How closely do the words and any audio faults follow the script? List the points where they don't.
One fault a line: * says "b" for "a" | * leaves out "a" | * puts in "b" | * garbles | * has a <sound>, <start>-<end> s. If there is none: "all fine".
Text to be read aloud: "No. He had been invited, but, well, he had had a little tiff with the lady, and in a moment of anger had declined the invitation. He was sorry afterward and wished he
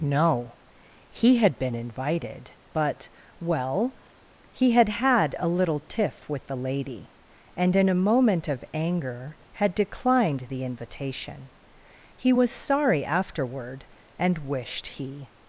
all fine